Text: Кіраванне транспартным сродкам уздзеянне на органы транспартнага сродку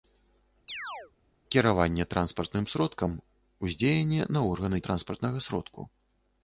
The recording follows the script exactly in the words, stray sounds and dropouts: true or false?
false